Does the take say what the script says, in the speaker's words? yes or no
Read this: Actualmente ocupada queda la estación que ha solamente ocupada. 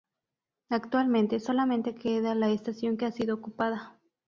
no